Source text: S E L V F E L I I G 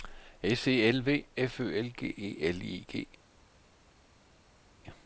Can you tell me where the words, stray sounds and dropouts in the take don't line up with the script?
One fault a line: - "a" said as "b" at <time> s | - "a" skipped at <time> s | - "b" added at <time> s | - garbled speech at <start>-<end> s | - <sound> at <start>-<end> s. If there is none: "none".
- "Ø L G" added at 1.6 s
- "I" skipped at 2.9 s